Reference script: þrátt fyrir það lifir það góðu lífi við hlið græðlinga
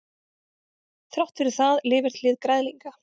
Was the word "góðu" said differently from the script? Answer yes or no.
yes